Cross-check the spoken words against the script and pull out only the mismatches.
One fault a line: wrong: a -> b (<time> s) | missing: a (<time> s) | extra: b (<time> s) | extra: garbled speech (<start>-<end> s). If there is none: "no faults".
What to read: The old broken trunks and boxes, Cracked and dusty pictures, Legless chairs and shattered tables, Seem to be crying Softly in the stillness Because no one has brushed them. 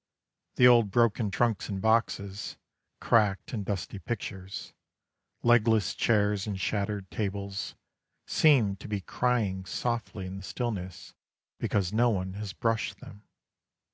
no faults